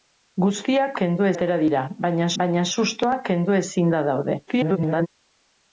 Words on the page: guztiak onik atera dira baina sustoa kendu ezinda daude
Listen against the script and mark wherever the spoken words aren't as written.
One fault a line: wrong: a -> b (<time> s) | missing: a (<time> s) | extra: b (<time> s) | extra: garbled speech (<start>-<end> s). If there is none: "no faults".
wrong: onik -> kendu (1.0 s)
extra: baina (2.4 s)
extra: garbled speech (4.5-5.1 s)